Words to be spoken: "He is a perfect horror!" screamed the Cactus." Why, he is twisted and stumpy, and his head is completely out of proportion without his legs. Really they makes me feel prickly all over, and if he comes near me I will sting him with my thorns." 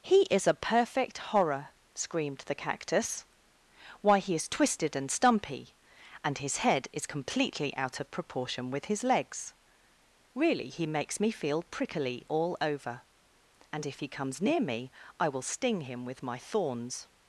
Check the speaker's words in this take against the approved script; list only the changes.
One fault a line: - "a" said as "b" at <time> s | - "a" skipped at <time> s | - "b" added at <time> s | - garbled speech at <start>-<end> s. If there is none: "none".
- "without" said as "with" at 8.7 s
- "they" said as "he" at 10.7 s